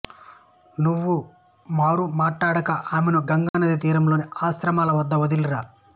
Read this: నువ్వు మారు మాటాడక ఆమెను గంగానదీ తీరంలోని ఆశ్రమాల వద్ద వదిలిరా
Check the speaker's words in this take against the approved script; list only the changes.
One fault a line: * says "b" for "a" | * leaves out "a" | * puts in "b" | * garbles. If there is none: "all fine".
all fine